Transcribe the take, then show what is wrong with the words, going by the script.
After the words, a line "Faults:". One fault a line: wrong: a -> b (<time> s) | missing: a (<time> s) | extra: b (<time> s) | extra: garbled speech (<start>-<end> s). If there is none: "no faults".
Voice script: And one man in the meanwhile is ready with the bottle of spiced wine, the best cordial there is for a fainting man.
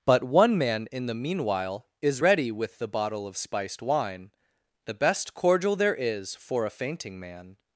But one man in the meanwhile is ready with the bottle of spiced wine, the best cordial there is for a fainting man.
Faults:
wrong: And -> But (0.1 s)